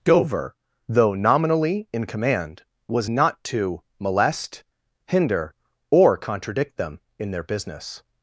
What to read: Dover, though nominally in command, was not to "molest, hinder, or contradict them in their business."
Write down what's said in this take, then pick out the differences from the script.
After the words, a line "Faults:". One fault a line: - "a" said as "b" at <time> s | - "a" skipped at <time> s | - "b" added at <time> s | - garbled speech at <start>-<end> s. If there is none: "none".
Dover, though nominally in command, was not to "molest, hinder, or contradict them in their business."
Faults:
none